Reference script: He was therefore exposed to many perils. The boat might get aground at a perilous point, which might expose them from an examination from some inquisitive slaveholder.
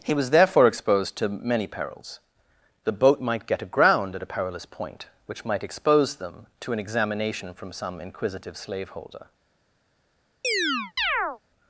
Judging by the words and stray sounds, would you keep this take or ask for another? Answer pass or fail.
fail